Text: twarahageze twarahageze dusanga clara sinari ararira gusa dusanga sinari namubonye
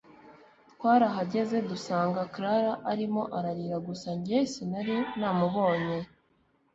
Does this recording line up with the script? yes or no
no